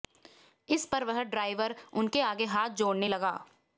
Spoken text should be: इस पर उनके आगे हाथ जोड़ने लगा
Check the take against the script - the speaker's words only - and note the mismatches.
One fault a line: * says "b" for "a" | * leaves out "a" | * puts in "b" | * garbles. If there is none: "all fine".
* puts in "वह ड्राइवर"